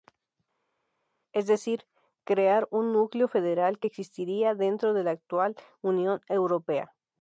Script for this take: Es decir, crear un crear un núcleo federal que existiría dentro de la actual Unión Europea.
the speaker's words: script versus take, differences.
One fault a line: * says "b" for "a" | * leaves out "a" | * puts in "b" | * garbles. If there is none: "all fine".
* leaves out "crear un"